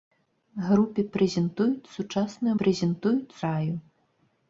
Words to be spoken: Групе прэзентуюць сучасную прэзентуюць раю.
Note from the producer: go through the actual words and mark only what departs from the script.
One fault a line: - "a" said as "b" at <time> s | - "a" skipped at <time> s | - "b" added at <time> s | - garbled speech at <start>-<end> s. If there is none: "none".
none